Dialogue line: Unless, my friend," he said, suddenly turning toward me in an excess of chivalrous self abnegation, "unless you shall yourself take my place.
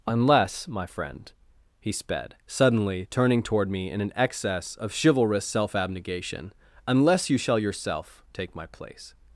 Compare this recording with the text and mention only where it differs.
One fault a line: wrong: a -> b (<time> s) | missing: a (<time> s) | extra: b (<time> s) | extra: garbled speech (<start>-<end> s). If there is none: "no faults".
wrong: said -> sped (1.9 s)